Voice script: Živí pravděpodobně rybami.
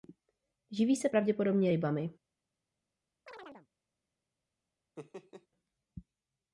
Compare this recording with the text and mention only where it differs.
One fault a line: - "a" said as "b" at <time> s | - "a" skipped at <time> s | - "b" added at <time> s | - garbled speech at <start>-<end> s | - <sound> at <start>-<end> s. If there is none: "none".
- "se" added at 0.9 s
- chirp at 3.3-3.7 s
- laugh at 5.0-5.5 s